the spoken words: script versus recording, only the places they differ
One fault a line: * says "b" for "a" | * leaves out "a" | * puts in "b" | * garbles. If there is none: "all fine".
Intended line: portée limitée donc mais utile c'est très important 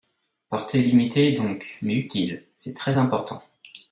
all fine